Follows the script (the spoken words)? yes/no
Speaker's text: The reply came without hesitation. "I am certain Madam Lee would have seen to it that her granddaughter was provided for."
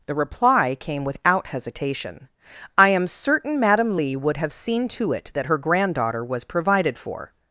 yes